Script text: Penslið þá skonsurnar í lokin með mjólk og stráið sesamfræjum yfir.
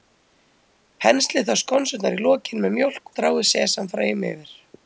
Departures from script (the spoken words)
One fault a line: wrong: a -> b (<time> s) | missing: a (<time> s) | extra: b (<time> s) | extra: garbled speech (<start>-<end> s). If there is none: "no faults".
missing: og (3.1 s)